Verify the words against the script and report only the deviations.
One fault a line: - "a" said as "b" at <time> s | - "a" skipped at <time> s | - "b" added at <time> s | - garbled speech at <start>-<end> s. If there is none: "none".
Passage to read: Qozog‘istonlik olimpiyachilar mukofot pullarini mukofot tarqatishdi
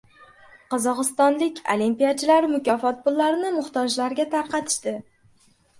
- "mukofot" said as "muhtojlarga" at 3.6 s